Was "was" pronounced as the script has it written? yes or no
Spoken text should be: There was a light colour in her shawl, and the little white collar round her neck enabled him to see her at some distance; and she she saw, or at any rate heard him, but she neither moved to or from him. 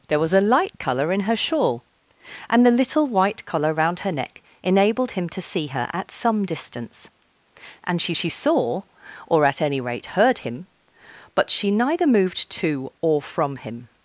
yes